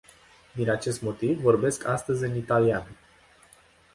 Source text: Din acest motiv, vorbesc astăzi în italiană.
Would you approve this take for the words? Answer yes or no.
yes